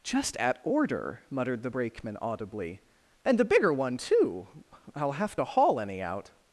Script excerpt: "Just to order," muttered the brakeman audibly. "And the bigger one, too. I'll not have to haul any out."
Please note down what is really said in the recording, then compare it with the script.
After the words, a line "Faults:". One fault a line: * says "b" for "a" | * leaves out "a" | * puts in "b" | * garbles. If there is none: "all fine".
"Just at order," muttered the brakeman audibly. "And the bigger one, too. I'll have to haul any out."
Faults:
* says "at" for "to"
* leaves out "not"